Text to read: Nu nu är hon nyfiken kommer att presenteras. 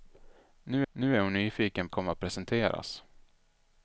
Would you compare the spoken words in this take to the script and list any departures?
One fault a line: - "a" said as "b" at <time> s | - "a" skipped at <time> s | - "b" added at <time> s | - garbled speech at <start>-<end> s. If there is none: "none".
none